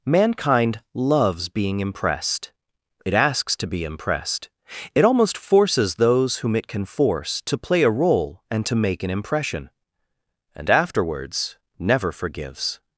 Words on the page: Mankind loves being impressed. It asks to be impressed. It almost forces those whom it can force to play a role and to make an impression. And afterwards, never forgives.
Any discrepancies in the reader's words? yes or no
no